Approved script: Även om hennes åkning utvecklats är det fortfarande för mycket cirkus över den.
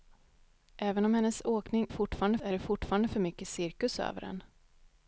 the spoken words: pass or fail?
fail